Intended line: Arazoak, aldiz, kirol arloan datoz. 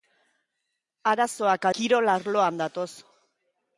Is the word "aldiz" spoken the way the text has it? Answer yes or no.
no